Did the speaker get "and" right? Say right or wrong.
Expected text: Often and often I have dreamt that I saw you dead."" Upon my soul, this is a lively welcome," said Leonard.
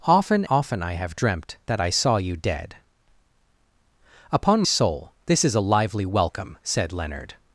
wrong